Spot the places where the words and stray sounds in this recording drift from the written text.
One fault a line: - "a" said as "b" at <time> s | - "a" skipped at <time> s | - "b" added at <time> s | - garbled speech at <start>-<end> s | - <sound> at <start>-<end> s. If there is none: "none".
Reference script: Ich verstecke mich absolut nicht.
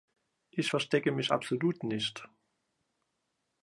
none